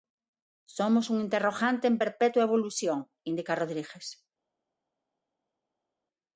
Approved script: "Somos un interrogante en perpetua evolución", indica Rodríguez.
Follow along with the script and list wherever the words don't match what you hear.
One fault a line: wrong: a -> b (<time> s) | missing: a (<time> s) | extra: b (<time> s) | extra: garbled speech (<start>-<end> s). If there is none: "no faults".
no faults